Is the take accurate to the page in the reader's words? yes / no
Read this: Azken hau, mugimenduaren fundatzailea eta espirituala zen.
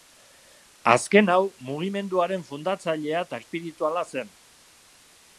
yes